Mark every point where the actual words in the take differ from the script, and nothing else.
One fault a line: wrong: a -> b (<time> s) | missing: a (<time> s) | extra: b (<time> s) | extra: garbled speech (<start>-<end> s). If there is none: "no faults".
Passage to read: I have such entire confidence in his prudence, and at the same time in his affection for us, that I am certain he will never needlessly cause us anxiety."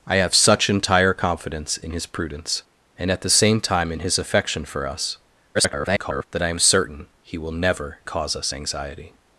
extra: garbled speech (5.5-6.2 s)
missing: needlessly (8.0 s)